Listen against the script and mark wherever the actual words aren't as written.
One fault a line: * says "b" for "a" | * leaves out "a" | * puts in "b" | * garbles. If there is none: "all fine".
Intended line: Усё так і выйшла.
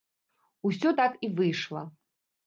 all fine